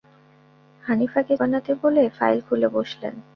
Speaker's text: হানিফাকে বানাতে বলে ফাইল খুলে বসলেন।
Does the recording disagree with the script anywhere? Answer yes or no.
no